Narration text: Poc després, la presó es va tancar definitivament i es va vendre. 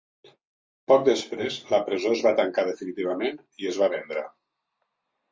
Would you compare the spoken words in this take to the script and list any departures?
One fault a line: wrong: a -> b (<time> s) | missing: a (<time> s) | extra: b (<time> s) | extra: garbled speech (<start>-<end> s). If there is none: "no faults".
no faults